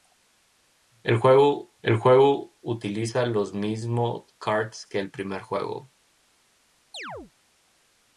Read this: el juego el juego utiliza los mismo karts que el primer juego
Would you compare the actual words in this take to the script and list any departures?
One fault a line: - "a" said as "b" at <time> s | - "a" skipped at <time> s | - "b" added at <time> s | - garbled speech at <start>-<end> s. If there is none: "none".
none